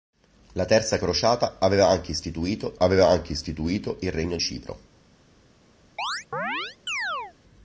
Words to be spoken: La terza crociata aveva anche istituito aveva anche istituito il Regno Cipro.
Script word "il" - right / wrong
right